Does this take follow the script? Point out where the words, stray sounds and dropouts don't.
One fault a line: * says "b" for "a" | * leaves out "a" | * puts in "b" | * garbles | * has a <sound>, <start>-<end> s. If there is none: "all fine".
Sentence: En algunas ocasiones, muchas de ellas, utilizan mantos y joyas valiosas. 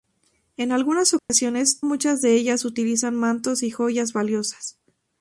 * has a dropout, 1.2-1.3 s